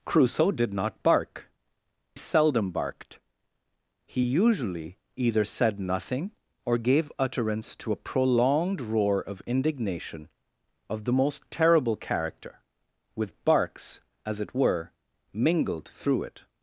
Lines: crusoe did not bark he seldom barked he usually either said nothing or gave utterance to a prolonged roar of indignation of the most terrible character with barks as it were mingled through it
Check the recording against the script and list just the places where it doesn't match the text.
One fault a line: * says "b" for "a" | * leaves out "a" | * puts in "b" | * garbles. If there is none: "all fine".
* leaves out "he"